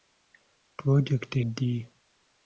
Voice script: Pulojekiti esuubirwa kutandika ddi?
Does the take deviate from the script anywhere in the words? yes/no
yes